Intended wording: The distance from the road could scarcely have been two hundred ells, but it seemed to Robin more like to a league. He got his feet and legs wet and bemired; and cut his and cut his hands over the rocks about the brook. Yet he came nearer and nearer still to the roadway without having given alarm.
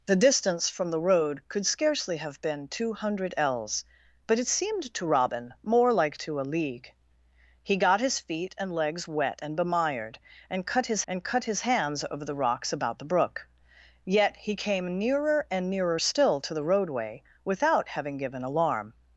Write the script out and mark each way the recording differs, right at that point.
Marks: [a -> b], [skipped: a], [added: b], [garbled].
The distance from the road could scarcely have been two hundred ells, but it seemed to Robin more like to a league. He got his feet and legs wet and bemired; and cut his and cut his hands over the rocks about the brook. Yet he came nearer and nearer still to the roadway without having given alarm.